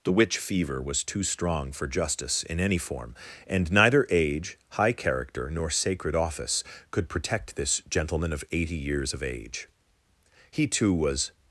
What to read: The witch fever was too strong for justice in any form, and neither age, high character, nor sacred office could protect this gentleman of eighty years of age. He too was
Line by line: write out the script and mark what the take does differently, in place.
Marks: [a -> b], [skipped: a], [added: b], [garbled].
The witch fever was too strong for justice in any form, and neither age, high character, nor sacred office could protect this gentleman of eighty years of age. He too was